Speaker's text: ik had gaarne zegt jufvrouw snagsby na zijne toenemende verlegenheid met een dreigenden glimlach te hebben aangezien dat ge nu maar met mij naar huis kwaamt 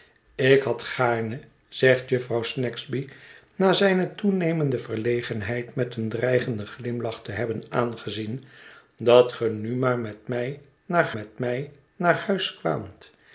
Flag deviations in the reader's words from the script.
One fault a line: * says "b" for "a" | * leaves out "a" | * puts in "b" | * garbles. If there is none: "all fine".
* puts in "met mij naar"